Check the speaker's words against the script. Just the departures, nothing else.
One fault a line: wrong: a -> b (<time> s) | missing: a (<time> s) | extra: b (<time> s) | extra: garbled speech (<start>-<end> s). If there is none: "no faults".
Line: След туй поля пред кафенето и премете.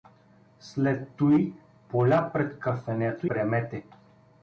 missing: и (3.3 s)